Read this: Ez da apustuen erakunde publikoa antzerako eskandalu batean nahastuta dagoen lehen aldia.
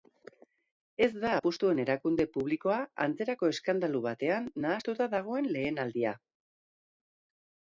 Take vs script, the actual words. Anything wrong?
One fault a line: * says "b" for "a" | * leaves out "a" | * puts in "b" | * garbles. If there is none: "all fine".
all fine